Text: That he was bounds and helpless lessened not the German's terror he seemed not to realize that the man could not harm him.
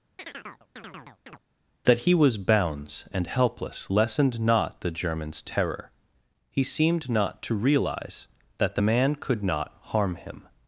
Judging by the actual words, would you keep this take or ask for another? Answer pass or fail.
pass